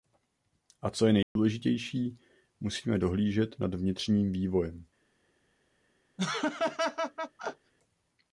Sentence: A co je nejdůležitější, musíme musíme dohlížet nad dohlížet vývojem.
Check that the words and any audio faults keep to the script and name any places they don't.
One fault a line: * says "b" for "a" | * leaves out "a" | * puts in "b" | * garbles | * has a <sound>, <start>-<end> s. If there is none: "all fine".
* has a dropout, 1.2-1.4 s
* leaves out "musíme"
* says "vnitřním" for "dohlížet"
* has a laugh, 6.2-7.7 s